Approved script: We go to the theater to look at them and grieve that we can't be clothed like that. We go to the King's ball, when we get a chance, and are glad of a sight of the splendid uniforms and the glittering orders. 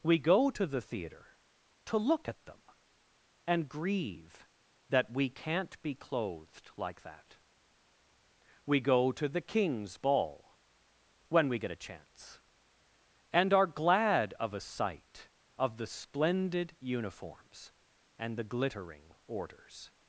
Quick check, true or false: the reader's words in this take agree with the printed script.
true